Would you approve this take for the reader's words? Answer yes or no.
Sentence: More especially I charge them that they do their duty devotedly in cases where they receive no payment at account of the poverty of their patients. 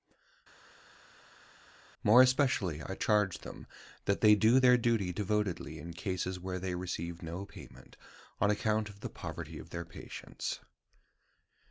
no